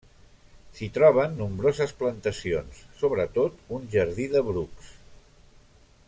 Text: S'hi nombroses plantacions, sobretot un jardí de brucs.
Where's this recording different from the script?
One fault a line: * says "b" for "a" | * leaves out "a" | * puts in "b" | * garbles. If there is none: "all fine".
* puts in "troben"